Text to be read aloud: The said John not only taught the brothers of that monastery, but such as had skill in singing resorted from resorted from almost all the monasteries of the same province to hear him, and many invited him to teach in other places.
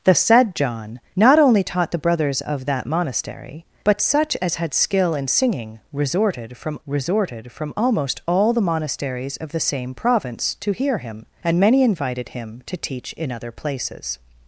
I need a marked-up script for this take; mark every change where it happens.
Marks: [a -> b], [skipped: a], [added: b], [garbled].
The said John not only taught the brothers of that monastery, but such as had skill in singing resorted from resorted from almost all the monasteries of the same province to hear him, and many invited him to teach in other places.